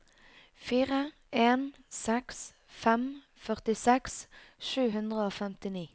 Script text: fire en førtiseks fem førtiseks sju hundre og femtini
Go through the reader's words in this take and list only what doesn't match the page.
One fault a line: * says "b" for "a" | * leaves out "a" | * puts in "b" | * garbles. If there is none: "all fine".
* says "seks" for "førtiseks"